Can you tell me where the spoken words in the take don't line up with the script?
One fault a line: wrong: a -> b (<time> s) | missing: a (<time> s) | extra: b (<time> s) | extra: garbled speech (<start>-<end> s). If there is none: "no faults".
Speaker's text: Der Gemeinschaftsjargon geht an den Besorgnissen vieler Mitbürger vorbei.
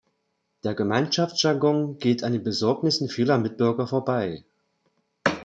no faults